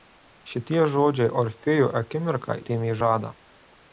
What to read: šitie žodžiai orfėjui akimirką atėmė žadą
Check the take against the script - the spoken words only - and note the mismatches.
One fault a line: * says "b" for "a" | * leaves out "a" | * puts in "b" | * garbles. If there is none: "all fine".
all fine